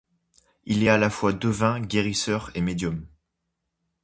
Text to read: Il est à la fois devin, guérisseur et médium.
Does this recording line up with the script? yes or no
yes